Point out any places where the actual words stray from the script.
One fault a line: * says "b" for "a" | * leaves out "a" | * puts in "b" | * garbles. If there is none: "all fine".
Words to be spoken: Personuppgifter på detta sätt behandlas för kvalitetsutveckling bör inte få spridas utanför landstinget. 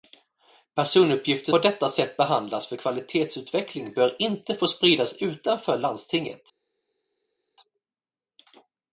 all fine